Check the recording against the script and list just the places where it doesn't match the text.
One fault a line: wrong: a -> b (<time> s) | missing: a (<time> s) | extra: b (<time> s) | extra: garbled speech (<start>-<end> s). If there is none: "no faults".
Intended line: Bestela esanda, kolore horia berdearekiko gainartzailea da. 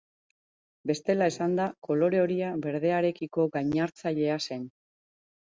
wrong: da -> zen (4.5 s)